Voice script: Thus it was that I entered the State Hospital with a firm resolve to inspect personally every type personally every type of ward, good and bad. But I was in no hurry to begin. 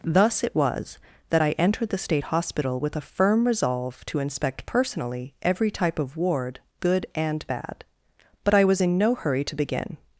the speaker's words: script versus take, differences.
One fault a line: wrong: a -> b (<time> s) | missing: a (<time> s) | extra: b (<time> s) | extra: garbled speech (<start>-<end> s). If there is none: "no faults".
missing: personally every type (6.0 s)